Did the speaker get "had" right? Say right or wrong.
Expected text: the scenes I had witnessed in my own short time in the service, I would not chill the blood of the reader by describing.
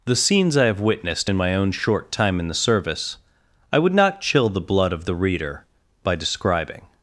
wrong